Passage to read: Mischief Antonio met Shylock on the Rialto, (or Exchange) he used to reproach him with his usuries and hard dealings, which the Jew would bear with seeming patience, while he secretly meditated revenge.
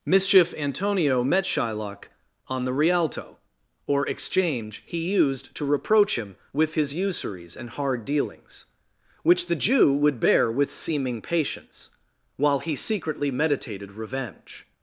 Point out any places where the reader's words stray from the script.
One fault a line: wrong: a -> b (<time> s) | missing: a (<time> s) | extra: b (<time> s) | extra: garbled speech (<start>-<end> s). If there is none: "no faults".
no faults